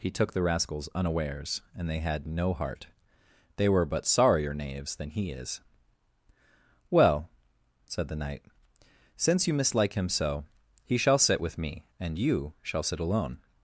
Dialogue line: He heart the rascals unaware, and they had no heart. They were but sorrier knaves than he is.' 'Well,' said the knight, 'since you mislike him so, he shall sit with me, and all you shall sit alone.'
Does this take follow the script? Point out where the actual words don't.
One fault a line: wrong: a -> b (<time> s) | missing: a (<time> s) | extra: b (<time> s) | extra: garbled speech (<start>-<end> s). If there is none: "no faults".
wrong: heart -> took (0.1 s)
wrong: unaware -> unawares (0.9 s)
missing: all (12.2 s)